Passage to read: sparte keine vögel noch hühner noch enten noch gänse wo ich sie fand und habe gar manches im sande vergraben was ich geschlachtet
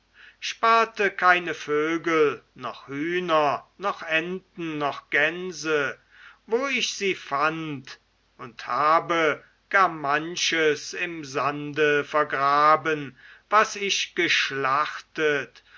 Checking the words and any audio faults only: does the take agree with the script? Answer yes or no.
yes